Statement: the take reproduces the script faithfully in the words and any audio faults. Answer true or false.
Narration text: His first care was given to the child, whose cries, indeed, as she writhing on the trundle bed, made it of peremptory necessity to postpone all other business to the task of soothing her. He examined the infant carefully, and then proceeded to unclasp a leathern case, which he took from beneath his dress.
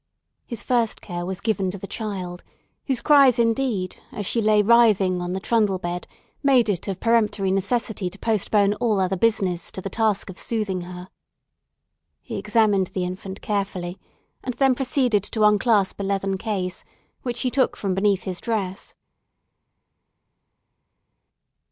false